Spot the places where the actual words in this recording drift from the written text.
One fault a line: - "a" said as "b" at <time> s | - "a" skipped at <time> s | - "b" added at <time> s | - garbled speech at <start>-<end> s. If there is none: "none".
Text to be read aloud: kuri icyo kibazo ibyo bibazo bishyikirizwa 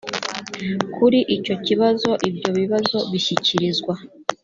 none